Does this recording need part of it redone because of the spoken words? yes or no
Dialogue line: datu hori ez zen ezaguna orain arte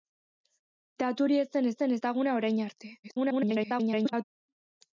yes